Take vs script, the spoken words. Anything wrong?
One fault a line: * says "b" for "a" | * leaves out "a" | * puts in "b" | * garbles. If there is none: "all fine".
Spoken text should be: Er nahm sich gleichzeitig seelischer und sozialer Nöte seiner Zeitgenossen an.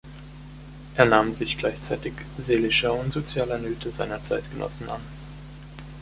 all fine